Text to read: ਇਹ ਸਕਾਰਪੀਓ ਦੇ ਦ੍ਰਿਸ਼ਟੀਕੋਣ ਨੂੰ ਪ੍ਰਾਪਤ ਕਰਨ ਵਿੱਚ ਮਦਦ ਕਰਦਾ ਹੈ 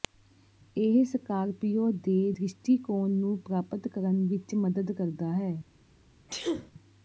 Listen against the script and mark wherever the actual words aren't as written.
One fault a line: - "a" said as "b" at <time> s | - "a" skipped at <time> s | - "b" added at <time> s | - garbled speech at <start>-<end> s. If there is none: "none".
none